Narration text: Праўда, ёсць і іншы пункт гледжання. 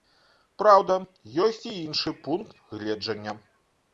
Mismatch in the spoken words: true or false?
false